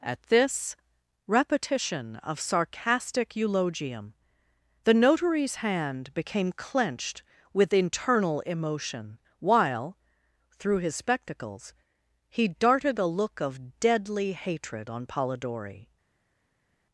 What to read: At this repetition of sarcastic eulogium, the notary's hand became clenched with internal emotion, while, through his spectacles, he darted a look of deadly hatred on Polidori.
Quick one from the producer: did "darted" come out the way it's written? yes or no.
yes